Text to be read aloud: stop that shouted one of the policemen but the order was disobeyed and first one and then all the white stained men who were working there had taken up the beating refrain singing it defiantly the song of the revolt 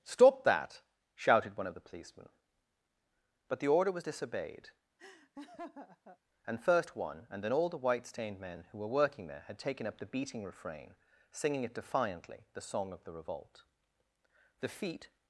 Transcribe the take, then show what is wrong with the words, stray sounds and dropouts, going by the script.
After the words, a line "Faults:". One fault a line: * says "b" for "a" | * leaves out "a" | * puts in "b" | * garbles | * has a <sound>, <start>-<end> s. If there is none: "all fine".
stop that shouted one of the policemen but the order was disobeyed and first one and then all the white stained men who were working there had taken up the beating refrain singing it defiantly the song of the revolt the feet
Faults:
* has a laugh, 5.0-6.2 s
* puts in "the feet"